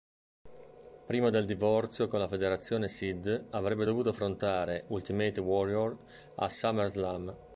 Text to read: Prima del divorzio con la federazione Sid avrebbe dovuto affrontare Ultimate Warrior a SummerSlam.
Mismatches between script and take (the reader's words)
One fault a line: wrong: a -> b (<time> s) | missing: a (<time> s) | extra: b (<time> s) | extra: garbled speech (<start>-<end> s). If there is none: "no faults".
no faults